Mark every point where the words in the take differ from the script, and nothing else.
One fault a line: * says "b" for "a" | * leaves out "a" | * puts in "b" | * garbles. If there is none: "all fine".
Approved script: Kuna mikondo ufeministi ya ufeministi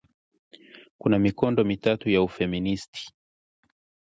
* says "mitatu" for "ufeministi"